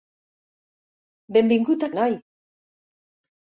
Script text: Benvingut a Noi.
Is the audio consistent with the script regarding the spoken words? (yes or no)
yes